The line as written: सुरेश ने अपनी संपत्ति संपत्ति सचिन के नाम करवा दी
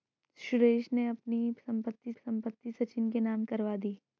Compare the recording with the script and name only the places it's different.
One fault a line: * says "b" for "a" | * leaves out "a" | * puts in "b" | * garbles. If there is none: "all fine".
all fine